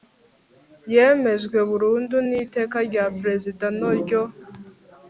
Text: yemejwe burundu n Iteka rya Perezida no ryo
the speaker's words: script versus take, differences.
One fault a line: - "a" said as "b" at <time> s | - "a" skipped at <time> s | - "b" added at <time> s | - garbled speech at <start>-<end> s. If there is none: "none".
none